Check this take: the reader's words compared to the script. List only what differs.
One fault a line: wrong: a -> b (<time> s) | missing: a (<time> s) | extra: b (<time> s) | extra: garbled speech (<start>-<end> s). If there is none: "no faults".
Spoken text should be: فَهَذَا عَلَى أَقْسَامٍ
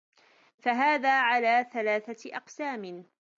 extra: ثَلَاثَةِ (1.7 s)